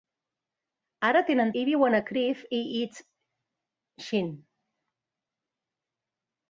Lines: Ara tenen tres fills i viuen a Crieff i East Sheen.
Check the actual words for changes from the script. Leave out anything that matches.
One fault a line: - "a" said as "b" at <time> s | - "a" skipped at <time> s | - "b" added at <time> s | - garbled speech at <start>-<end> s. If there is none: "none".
- "tres fills" skipped at 1.5 s